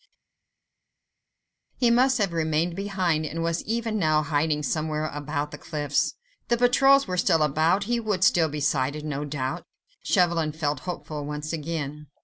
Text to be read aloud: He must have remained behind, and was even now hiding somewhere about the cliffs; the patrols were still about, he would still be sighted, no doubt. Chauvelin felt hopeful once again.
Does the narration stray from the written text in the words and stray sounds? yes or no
no